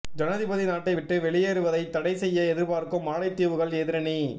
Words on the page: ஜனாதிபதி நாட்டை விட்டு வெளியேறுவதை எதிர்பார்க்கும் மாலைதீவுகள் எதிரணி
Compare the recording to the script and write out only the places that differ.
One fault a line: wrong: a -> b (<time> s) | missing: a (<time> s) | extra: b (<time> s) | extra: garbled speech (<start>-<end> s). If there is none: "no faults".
extra: தடை செய்ய (1.9 s)